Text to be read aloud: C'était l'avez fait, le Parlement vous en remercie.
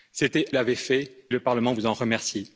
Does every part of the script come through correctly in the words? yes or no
yes